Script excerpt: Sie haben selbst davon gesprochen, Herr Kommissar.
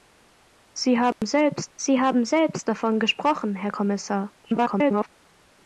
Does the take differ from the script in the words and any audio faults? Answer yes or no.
yes